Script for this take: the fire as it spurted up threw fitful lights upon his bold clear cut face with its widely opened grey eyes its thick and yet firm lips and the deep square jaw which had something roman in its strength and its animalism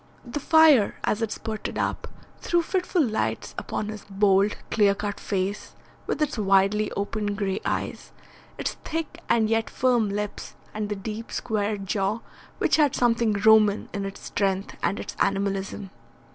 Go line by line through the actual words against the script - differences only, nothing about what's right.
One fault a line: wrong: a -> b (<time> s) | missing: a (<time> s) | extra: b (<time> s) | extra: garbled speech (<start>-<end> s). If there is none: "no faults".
no faults